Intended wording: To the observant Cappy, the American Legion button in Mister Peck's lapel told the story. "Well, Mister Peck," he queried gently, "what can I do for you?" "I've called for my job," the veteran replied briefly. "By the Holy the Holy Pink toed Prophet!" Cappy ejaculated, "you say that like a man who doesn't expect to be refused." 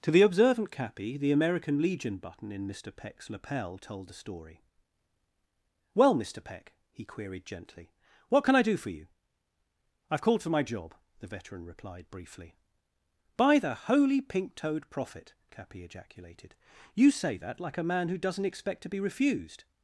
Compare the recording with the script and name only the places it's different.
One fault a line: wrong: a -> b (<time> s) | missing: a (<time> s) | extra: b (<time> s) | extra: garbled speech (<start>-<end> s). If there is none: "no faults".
missing: the Holy (14.2 s)